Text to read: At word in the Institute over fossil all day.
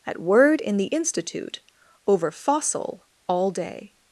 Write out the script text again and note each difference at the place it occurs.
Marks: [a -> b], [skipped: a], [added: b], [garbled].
At word in the Institute over fossil all day.